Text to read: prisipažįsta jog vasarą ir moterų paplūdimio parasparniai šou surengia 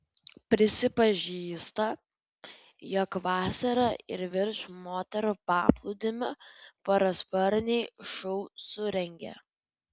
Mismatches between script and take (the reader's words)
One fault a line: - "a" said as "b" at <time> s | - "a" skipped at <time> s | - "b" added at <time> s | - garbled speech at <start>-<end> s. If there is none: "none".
- "virš" added at 4.4 s